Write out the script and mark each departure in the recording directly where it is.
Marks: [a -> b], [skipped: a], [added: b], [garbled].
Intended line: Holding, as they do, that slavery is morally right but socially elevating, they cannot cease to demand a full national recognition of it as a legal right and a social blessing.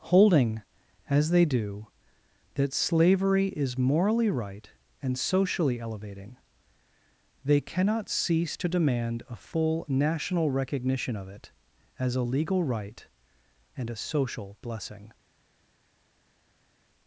Holding, as they do, that slavery is morally right [but -> and] socially elevating, they cannot cease to demand a full national recognition of it as a legal right and a social blessing.